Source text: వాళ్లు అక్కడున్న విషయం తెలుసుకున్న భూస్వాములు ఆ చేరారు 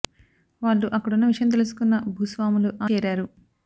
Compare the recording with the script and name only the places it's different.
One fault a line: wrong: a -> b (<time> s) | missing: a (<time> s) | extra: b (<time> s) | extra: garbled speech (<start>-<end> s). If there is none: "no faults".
no faults